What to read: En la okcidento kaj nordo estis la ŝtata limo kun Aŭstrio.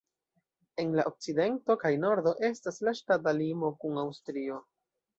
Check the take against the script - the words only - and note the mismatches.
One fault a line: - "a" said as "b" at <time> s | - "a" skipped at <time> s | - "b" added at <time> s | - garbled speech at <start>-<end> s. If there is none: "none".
- "estis" said as "estas" at 2.5 s